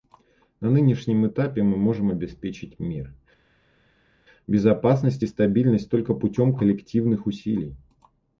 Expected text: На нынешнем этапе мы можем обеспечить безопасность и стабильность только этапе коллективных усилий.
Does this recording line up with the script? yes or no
no